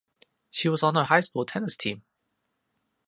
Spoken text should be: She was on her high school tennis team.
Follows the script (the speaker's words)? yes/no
yes